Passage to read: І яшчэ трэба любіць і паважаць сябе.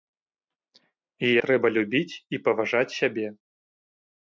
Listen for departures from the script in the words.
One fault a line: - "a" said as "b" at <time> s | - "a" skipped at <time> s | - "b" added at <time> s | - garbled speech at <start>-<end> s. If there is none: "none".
- "яшчэ" skipped at 1.3 s